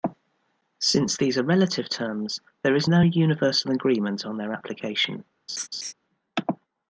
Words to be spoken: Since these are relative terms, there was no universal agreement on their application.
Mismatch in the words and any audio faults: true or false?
true